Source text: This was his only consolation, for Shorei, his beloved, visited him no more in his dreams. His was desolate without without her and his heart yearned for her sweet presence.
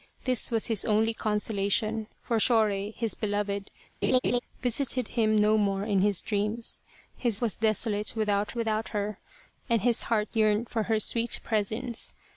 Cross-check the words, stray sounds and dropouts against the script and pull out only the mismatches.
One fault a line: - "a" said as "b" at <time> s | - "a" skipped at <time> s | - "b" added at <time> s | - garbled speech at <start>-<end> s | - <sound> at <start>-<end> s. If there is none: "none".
- laugh at 4.0-4.4 s